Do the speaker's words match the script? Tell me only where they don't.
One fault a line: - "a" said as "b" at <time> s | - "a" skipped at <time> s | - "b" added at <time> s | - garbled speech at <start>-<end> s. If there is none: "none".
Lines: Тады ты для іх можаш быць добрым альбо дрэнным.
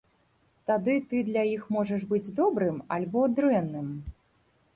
none